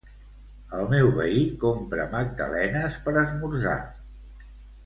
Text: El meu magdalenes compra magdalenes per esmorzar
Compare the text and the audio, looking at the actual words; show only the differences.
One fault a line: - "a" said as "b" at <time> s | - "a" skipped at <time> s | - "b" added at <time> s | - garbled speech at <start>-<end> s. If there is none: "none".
- "magdalenes" said as "veí" at 1.2 s